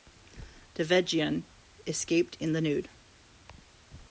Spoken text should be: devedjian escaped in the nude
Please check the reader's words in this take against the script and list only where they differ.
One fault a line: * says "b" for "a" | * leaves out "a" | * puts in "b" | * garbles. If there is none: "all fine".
all fine